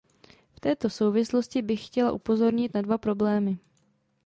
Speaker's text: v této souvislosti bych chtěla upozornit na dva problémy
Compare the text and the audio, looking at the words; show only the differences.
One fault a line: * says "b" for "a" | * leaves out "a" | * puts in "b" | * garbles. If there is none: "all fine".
all fine